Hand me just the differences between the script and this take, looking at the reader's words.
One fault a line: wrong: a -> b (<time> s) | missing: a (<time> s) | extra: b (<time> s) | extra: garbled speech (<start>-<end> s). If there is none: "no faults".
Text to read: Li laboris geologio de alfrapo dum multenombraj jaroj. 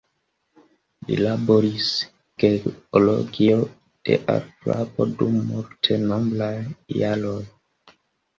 no faults